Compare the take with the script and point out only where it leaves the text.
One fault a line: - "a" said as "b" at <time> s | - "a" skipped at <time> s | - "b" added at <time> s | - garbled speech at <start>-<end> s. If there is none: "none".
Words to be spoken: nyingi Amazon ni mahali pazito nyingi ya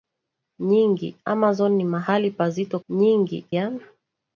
none